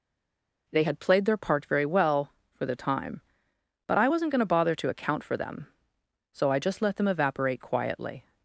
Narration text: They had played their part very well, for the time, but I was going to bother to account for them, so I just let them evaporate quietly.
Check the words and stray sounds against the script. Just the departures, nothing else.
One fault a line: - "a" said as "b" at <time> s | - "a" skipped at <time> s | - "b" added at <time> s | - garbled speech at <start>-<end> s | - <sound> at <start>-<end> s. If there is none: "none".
- "was" said as "wasn't" at 4.0 s